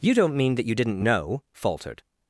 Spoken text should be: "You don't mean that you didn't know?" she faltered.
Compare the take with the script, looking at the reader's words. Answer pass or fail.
fail